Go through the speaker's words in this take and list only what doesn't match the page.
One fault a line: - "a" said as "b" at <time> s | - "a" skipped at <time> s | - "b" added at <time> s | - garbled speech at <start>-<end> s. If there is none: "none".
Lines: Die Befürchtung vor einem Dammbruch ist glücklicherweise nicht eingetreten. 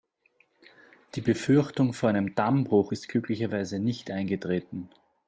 none